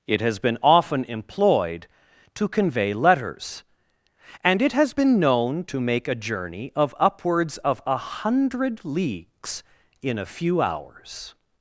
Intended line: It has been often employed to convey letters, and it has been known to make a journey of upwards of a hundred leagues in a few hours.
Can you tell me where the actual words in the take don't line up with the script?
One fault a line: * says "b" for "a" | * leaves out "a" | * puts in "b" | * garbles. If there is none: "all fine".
all fine